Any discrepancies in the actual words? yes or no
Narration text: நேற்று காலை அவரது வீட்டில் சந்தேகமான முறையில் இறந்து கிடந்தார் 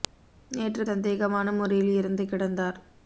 yes